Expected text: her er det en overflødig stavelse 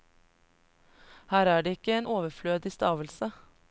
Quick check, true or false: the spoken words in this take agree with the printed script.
false